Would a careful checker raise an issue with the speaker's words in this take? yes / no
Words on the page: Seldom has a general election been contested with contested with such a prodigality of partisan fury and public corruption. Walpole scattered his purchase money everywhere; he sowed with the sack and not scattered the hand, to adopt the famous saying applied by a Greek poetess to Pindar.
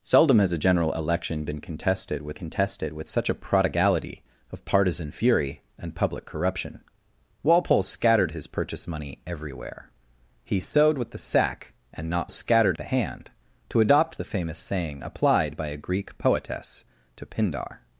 no